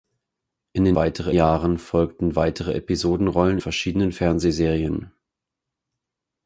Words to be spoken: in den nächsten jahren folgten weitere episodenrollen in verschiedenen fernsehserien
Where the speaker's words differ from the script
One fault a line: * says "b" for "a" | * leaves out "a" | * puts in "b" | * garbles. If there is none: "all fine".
* says "weitere" for "nächsten"
* leaves out "in"